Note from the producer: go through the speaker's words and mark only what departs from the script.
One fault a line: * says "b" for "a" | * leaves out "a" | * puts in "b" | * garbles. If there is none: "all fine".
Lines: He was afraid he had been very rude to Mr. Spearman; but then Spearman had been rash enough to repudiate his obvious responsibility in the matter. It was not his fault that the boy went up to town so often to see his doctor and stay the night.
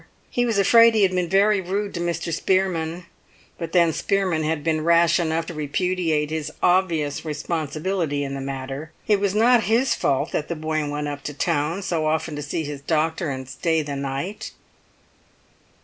all fine